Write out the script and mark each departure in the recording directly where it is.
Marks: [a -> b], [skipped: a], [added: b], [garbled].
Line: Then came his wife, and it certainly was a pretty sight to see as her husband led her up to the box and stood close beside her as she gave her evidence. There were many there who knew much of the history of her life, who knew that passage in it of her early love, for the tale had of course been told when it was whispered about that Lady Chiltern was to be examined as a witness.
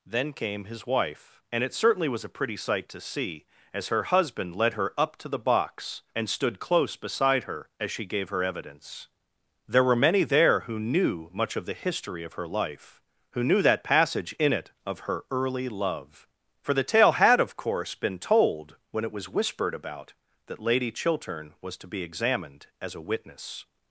Then came his wife, and it certainly was a pretty sight to see as her husband led her up to the box and stood close beside her as she gave her evidence. There were many there who knew much of the history of her life, who knew that passage in it of her early love, for the tale had of course been told when it was whispered about that Lady Chiltern was to be examined as a witness.